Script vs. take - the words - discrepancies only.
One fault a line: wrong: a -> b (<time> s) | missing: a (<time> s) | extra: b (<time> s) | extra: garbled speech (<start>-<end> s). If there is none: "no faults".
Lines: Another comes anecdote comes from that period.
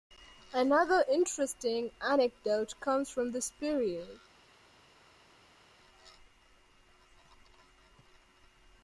wrong: comes -> interesting (1.1 s)
wrong: that -> this (3.3 s)